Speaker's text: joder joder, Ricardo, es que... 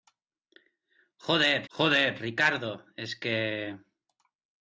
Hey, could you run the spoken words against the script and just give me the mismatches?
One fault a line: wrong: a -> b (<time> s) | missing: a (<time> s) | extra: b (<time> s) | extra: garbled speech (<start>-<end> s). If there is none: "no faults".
no faults